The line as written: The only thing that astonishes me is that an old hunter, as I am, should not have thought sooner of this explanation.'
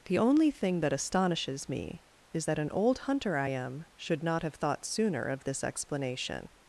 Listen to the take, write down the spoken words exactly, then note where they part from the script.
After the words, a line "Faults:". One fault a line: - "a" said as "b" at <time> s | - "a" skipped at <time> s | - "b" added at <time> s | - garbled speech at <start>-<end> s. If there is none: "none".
The only thing that astonishes me is that an old hunter, I am, should not have thought sooner of this explanation.'
Faults:
- "as" skipped at 3.4 s